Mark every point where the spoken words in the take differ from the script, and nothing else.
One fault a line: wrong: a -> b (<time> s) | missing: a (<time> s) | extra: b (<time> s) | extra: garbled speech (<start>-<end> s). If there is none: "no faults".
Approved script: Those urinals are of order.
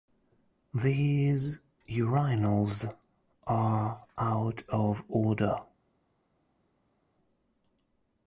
wrong: Those -> These (0.7 s)
extra: out (4.2 s)